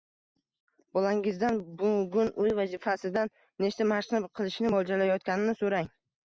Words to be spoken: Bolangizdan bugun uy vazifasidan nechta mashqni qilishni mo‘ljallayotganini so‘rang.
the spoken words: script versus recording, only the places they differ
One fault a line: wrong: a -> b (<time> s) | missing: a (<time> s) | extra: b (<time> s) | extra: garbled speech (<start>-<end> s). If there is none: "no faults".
no faults